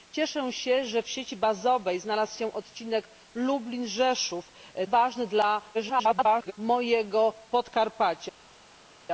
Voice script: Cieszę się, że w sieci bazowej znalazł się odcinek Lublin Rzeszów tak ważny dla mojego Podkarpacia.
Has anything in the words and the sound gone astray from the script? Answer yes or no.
yes